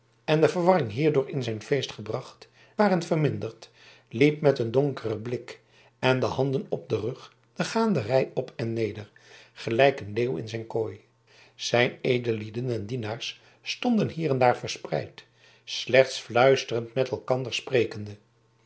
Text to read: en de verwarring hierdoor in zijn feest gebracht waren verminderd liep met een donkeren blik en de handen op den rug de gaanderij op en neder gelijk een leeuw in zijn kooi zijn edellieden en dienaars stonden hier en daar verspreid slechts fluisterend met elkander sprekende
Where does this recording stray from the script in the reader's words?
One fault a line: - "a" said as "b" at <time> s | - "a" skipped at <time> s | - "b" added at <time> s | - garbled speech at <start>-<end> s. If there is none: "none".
none